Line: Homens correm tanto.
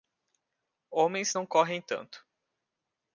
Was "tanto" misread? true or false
false